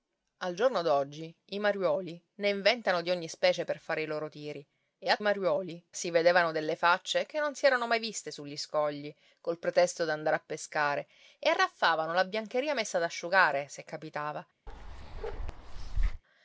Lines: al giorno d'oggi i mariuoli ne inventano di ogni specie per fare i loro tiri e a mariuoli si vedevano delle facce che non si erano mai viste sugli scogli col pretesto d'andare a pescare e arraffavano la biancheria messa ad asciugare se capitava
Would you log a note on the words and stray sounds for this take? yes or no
yes